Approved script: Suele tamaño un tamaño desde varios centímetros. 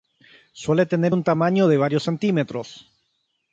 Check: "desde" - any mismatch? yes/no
yes